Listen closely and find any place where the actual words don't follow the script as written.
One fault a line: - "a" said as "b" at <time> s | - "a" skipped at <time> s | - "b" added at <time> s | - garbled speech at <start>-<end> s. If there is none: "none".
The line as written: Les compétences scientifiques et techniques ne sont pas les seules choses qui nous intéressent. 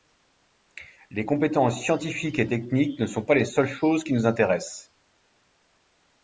none